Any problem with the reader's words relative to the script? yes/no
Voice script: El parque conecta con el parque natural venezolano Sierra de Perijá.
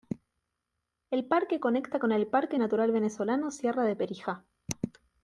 no